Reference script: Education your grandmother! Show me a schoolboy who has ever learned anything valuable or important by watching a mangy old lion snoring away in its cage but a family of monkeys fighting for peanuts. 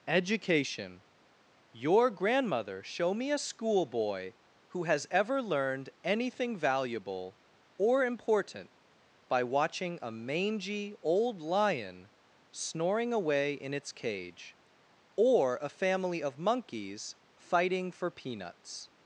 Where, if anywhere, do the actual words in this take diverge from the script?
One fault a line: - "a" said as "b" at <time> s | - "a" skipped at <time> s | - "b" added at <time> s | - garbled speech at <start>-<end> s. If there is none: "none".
- "but" said as "or" at 15.2 s